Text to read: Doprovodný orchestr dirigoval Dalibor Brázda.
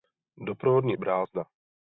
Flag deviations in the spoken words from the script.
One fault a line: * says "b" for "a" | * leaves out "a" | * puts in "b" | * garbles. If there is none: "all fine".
* leaves out "orchestr dirigoval Dalibor"